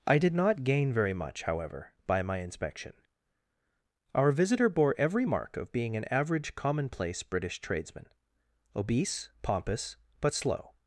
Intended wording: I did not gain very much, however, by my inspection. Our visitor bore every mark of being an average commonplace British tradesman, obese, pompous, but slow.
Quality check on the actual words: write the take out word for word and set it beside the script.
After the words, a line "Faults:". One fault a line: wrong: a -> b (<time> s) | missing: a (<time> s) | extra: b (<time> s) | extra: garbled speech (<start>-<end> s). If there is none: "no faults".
I did not gain very much, however, by my inspection. Our visitor bore every mark of being an average commonplace British tradesman, obese, pompous, but slow.
Faults:
no faults